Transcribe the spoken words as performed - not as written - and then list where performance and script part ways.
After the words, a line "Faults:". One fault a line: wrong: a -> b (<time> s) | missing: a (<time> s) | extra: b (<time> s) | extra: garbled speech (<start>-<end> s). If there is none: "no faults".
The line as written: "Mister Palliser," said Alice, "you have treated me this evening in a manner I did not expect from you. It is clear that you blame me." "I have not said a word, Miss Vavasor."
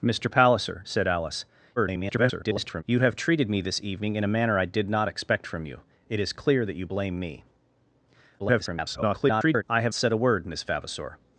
"Mister Palliser," said Alice, [garbled] "you have treated me this evening in a manner I did not expect from you. It is clear that you blame me." [garbled] "I have said a word, Miss Vavasor."
Faults:
extra: garbled speech (1.8-2.8 s)
extra: garbled speech (8.4-9.6 s)
missing: not (9.9 s)